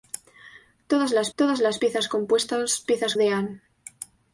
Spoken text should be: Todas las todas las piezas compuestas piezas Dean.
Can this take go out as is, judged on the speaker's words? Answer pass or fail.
pass